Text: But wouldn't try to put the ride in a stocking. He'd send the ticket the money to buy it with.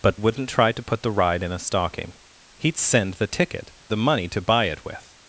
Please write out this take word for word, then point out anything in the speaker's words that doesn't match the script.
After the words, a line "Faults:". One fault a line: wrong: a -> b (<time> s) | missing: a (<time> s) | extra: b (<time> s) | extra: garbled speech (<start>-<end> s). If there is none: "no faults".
But wouldn't try to put the ride in a stocking. He'd send the ticket the money to buy it with.
Faults:
no faults